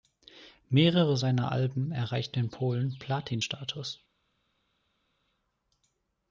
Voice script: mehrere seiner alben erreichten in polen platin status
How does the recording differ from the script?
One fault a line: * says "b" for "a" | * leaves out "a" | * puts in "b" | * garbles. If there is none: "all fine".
all fine